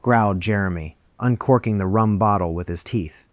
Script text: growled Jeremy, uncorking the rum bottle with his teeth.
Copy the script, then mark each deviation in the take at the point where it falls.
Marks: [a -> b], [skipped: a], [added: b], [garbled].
growled Jeremy, uncorking the rum bottle with his teeth.